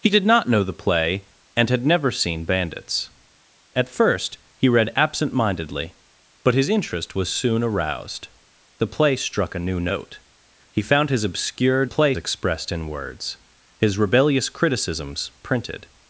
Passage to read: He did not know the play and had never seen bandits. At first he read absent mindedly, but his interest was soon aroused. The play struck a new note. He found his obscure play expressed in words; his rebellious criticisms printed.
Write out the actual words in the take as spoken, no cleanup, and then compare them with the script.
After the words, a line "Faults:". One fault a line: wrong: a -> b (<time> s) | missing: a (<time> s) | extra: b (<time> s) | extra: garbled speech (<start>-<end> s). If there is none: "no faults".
He did not know the play and had never seen bandits. At first he read absent mindedly, but his interest was soon aroused. The play struck a new note. He found his obscure play expressed in words; his rebellious criticisms printed.
Faults:
no faults